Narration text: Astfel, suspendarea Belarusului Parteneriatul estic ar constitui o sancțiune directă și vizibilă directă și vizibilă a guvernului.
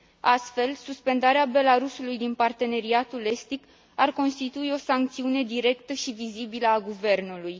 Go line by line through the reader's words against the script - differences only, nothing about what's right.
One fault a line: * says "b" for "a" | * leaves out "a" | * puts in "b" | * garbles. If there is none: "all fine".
* puts in "din"
* leaves out "directă și vizibilă"